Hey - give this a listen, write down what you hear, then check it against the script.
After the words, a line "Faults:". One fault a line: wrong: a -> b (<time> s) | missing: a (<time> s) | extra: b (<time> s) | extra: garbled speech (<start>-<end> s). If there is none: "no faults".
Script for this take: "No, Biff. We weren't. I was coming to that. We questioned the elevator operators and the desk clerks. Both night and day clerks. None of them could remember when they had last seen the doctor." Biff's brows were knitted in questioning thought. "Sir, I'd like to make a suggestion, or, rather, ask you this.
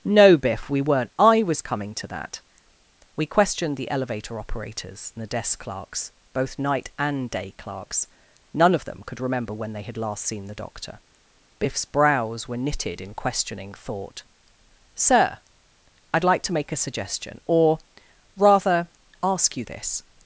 "No, Biff. We weren't. I was coming to that. We questioned the elevator operators and the desk clerks. Both night and day clerks. None of them could remember when they had last seen the doctor." Biff's brows were knitted in questioning thought. "Sir, I'd like to make a suggestion, or, rather, ask you this.
Faults:
no faults